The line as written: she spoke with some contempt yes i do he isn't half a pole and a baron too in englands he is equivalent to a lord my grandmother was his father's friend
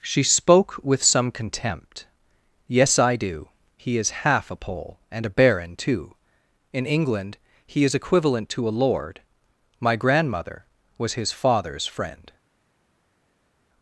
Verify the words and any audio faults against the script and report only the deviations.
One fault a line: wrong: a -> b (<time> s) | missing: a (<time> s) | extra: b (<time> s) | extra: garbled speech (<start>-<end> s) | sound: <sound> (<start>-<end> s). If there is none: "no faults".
wrong: isn't -> is (4.0 s)
wrong: englands -> england (6.9 s)